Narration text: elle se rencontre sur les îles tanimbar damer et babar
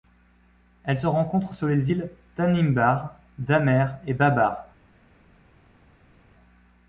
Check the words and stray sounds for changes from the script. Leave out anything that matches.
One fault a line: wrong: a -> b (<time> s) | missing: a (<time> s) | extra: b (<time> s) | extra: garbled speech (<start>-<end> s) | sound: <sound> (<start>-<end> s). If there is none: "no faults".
no faults